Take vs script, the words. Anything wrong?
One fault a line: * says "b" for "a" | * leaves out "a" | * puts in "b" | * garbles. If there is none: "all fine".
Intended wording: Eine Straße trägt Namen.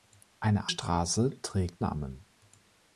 all fine